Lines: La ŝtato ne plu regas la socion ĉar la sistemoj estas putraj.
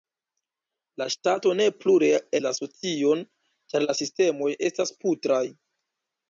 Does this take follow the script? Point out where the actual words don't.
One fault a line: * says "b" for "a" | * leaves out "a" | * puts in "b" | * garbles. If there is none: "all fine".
* leaves out "regas"